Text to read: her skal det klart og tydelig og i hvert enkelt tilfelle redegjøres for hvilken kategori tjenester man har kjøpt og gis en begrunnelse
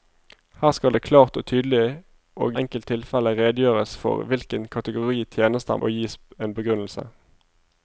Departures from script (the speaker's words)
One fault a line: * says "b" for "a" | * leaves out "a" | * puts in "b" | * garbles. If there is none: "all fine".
* leaves out "i hvert"
* leaves out "man har kjøpt"